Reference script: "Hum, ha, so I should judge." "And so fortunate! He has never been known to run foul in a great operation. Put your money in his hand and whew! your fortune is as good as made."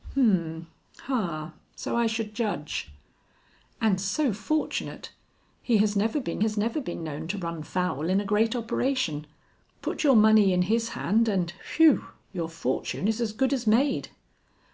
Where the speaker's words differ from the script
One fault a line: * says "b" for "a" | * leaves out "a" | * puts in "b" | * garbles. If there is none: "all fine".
* puts in "has never been"